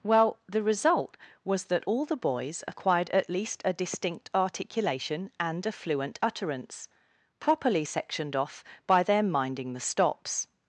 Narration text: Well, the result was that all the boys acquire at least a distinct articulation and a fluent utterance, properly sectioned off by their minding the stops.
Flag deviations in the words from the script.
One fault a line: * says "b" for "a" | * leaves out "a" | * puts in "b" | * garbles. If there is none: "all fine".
* says "acquired" for "acquire"